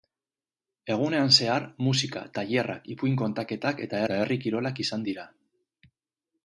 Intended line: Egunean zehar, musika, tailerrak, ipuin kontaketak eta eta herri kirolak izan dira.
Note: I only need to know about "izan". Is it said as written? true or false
true